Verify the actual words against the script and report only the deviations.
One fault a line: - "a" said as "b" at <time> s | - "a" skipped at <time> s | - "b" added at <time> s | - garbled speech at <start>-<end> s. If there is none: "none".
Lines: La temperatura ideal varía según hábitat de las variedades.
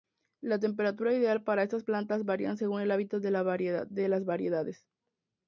- "para estas plantas" added at 1.4 s
- "el" added at 2.8 s